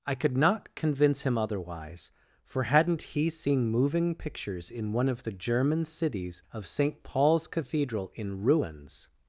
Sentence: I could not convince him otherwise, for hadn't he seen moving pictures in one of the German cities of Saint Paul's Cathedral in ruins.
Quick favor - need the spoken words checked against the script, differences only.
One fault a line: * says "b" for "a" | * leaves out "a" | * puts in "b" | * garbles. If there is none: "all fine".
all fine